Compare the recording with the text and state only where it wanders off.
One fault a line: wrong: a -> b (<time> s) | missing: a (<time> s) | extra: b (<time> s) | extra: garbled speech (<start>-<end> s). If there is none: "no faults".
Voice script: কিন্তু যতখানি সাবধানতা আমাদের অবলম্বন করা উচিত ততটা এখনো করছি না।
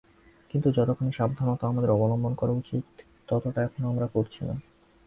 extra: আমরা (3.9 s)